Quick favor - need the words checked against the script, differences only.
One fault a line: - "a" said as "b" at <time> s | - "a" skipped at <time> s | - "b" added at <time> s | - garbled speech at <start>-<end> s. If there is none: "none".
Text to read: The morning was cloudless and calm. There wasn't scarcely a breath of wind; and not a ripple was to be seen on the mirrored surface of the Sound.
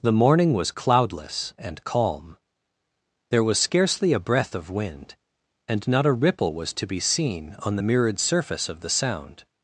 - "wasn't" said as "was" at 3.4 s